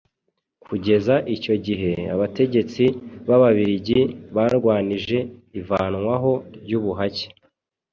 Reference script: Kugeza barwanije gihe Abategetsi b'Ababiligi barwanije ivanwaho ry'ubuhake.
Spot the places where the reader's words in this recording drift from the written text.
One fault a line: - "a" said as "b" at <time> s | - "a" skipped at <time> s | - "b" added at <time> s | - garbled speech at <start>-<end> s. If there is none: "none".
- "barwanije" said as "icyo" at 1.4 s